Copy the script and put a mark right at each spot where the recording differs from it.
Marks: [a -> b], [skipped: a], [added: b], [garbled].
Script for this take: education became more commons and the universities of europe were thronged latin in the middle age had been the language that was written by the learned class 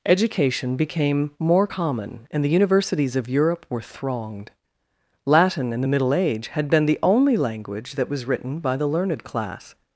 education became more [commons -> common] and the universities of europe were thronged latin in the middle age had been the [added: only] language that was written by the learned class